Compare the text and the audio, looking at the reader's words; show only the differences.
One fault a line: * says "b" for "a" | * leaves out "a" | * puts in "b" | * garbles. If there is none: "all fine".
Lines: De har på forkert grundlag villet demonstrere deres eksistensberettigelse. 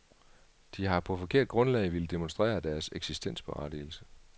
all fine